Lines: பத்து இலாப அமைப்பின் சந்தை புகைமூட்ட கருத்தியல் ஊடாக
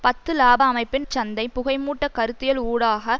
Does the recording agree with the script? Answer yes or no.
yes